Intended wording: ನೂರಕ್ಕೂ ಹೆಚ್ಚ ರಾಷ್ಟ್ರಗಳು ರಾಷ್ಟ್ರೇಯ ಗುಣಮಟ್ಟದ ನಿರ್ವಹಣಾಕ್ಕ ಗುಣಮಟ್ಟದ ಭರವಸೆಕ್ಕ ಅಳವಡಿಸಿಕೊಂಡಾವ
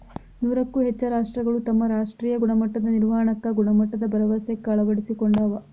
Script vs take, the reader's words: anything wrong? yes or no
yes